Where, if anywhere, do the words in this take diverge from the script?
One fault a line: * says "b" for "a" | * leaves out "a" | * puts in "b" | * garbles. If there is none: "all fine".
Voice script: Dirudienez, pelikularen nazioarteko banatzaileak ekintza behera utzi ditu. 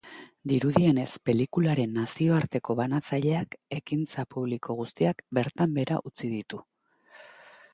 * puts in "publiko guztiak bertan"